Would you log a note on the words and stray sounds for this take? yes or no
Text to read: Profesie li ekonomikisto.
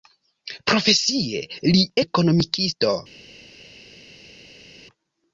no